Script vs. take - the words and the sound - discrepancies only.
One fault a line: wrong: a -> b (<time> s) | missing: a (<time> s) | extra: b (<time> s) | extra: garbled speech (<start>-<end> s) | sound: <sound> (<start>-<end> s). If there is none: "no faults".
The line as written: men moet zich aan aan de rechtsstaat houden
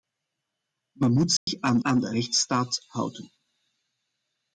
sound: dropout (1.4-1.5 s)